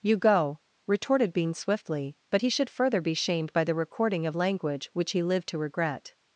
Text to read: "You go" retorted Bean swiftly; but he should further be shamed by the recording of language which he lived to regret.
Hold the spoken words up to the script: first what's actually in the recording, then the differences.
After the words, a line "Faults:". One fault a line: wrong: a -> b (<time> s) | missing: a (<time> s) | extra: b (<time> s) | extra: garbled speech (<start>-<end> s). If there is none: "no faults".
"You go" retorted Bean swiftly; but he should further be shamed by the recording of language which he lived to regret.
Faults:
no faults